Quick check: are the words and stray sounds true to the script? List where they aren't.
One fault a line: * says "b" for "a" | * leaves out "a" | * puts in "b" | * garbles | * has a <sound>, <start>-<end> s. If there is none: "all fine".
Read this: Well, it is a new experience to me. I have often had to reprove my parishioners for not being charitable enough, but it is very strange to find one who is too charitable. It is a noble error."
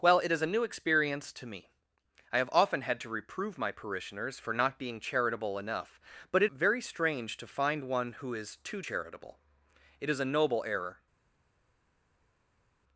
* leaves out "is"